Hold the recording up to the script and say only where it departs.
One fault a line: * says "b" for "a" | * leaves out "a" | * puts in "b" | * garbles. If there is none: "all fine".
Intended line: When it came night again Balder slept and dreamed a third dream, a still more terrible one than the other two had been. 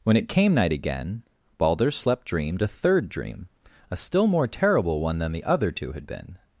* leaves out "and"